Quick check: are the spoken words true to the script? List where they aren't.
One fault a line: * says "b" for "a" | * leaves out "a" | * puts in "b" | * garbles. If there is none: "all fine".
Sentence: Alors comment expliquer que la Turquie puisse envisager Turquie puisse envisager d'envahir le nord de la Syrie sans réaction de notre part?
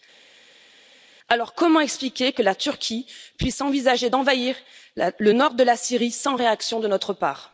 * leaves out "Turquie puisse envisager"